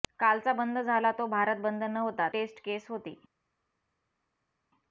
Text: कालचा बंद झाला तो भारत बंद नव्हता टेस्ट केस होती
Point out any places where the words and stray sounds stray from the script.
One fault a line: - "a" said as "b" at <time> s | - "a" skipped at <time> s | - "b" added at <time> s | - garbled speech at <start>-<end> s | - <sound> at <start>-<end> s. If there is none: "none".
none